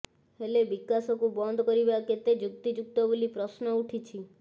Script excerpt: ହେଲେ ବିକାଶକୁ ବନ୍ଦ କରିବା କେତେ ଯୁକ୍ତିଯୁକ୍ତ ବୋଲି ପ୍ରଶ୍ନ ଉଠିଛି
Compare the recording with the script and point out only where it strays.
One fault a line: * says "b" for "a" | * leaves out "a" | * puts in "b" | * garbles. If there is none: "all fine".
all fine